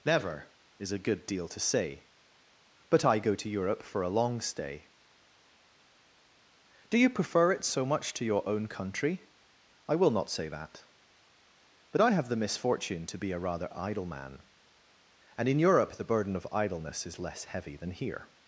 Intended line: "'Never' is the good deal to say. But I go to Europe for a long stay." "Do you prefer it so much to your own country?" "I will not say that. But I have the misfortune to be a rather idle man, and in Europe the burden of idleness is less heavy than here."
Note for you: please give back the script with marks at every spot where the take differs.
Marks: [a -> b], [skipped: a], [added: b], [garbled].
"'Never' is [the -> a] good deal to say. But I go to Europe for a long stay." "Do you prefer it so much to your own country?" "I will not say that. But I have the misfortune to be a rather idle man, and in Europe the burden of idleness is less heavy than here."